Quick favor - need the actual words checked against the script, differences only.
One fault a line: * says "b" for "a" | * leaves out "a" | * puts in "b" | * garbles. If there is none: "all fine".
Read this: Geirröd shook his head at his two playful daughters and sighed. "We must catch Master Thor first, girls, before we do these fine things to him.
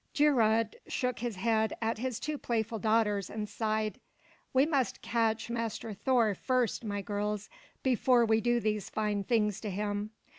* puts in "my"